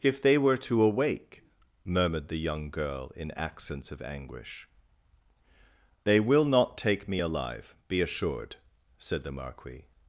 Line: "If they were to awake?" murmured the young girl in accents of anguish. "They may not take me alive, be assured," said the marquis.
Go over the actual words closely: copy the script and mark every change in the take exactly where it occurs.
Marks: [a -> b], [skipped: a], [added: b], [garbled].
"If they were to awake?" murmured the young girl in accents of anguish. "They [may -> will] not take me alive, be assured," said the marquis.